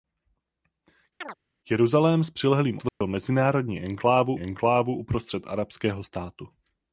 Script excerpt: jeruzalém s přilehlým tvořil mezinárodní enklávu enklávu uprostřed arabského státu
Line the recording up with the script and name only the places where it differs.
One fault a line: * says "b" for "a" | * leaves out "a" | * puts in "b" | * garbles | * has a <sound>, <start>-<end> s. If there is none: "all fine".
* has a chirp, 1.2-1.4 s
* has a dropout, 2.9-3.0 s